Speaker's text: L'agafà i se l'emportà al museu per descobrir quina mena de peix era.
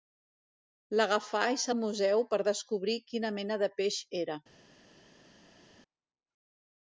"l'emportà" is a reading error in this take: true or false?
true